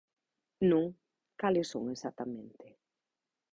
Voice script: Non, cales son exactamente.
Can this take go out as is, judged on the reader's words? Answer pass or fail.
pass